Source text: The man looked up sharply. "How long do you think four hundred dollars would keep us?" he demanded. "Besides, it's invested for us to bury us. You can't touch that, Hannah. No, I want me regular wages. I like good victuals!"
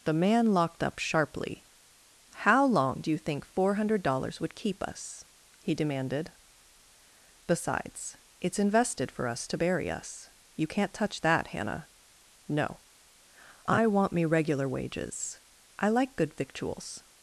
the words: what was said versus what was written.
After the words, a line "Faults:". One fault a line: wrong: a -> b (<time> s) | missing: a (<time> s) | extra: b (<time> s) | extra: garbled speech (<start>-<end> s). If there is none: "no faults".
The man locked up sharply. "How long do you think four hundred dollars would keep us?" he demanded. "Besides, it's invested for us to bury us. You can't touch that, Hannah. No, I want me regular wages. I like good victuals!"
Faults:
wrong: looked -> locked (0.5 s)